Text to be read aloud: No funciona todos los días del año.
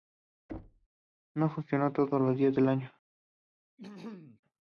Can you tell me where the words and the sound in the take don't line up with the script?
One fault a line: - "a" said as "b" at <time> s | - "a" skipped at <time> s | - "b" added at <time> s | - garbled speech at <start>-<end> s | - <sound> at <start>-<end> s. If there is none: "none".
- thud at 0.5-0.9 s
- throat clearing at 3.8-4.4 s